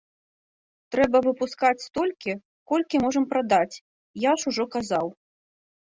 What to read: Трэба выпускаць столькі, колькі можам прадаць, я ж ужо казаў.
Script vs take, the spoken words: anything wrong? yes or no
no